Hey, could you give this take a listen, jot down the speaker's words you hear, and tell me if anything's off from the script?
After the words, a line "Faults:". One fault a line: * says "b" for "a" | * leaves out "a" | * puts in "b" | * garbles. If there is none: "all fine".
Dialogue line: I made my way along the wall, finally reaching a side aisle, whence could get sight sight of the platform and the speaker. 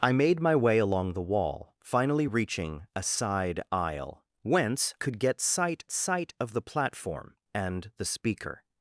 I made my way along the wall, finally reaching a side aisle, whence could get sight sight of the platform and the speaker.
Faults:
all fine